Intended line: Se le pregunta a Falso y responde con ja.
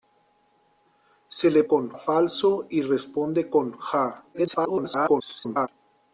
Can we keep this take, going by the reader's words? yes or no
no